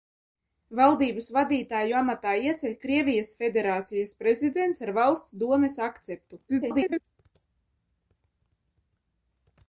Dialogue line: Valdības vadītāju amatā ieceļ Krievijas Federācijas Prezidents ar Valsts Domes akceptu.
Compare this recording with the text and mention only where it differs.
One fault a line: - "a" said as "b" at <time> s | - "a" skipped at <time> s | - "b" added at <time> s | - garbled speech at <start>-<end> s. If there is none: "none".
- garbled speech at 6.5-7.0 s